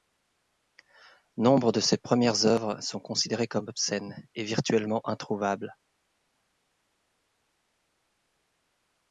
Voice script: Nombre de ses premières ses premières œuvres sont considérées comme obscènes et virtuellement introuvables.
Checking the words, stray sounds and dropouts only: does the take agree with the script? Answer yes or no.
no